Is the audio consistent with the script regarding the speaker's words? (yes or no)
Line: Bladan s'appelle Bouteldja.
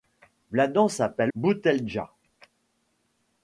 yes